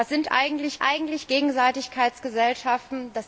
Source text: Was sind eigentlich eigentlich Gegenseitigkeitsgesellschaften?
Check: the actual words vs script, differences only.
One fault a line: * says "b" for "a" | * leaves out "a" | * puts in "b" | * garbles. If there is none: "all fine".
all fine